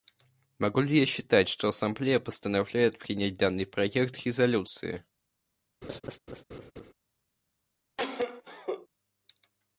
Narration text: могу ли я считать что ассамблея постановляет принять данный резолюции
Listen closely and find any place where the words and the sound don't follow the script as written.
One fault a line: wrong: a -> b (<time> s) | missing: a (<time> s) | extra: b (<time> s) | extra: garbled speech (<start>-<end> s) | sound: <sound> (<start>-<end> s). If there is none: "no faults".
extra: проект (3.7 s)
sound: laugh (5.8-6.9 s)
sound: cough (8.0-8.9 s)